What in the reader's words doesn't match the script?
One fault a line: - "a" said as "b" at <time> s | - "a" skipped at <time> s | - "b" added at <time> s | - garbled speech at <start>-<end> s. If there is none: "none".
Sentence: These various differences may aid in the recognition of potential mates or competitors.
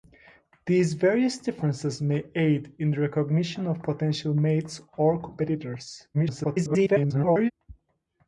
- garbled speech at 6.1-7.5 s